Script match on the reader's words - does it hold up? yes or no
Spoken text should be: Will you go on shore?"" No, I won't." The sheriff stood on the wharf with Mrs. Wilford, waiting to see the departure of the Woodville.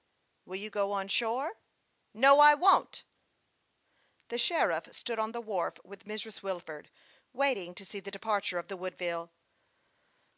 yes